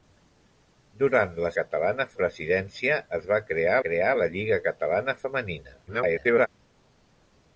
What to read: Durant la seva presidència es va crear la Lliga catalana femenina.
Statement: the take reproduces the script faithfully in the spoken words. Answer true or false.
false